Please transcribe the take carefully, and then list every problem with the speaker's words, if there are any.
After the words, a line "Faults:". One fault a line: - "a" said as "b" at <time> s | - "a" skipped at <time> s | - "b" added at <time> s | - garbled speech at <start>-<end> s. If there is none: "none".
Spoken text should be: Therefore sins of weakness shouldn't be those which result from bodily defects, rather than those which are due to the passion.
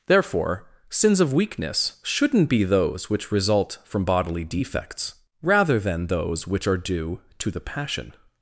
Therefore sins of weakness shouldn't be those which result from bodily defects, rather than those which are due to the passion.
Faults:
none